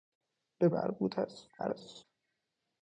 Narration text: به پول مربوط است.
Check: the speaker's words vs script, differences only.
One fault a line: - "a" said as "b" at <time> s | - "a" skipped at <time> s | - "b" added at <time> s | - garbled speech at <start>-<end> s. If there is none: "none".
- "پول" skipped at 0.7 s
- garbled speech at 1.6-2.0 s